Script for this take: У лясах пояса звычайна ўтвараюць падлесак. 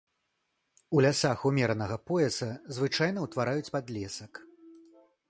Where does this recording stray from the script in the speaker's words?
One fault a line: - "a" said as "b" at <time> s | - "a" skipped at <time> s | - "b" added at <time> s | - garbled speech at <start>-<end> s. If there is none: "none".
- "умеранага" added at 1.5 s